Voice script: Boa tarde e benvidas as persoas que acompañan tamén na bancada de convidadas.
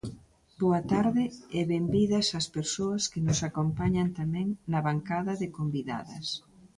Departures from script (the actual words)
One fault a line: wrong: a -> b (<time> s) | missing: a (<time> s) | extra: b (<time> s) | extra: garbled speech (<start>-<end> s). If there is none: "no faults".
extra: nos (3.3 s)